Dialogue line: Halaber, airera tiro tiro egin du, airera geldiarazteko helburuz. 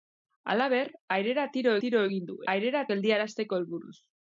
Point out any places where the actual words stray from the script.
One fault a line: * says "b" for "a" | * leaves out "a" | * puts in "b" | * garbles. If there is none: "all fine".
all fine